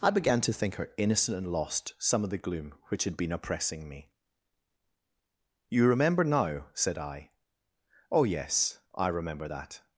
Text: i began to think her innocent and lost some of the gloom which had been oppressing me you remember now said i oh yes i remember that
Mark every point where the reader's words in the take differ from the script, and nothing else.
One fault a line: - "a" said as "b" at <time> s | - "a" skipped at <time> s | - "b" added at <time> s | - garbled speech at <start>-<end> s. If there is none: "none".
none